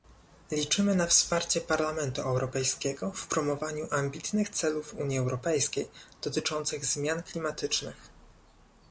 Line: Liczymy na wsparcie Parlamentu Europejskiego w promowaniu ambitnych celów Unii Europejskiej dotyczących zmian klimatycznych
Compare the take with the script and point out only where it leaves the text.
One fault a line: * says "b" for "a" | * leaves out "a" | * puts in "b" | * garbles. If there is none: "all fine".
all fine